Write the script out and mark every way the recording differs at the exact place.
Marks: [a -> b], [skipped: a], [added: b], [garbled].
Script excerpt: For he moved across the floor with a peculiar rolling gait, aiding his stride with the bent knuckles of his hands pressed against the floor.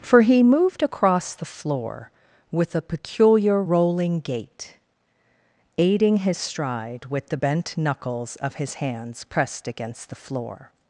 For he moved across the floor with a peculiar rolling gait, aiding his stride with the bent knuckles of his hands pressed against the floor.